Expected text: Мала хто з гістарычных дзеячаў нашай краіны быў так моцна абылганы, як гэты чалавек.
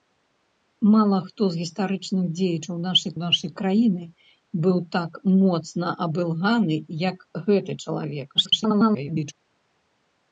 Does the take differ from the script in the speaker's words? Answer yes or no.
yes